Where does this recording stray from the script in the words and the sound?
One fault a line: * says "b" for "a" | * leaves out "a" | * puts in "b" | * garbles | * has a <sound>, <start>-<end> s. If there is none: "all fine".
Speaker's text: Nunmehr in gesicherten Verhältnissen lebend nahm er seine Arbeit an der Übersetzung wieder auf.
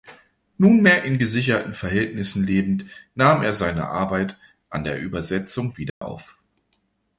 * has a dropout, 5.9-6.0 s